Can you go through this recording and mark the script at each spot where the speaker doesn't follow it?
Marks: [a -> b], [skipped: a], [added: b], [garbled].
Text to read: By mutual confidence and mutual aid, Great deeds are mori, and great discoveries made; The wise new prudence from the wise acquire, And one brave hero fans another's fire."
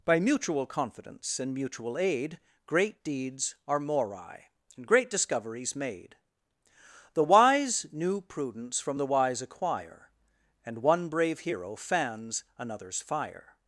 By mutual confidence and mutual aid, Great deeds are mori, and great discoveries made; The wise new prudence from the wise acquire, And one brave hero fans another's fire."